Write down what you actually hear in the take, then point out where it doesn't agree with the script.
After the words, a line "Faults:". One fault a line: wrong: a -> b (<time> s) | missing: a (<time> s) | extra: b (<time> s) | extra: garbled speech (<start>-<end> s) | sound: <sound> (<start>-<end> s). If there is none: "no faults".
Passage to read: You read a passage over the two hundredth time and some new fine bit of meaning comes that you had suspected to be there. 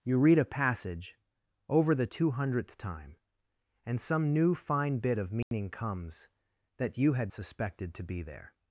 You read a passage over the two hundredth time and some new fine bit of meaning comes that you had suspected to be there.
Faults:
sound: dropout (5.4-5.5 s)